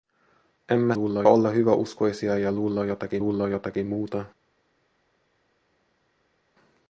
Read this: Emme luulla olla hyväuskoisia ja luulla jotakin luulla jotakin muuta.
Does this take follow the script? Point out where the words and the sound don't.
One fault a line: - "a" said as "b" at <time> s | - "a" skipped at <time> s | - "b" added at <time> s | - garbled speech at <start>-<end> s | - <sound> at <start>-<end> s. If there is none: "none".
none